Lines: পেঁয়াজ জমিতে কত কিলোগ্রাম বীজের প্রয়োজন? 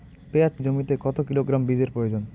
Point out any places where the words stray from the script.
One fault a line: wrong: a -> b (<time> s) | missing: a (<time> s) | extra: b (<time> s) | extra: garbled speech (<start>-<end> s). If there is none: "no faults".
no faults